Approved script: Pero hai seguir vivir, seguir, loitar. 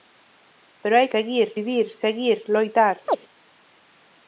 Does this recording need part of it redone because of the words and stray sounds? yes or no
yes